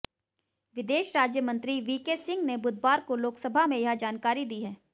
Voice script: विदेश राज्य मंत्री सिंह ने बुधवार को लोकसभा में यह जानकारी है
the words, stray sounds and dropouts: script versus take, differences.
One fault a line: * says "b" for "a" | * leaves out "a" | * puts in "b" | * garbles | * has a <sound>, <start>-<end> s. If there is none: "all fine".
* puts in "वीके"
* puts in "दी"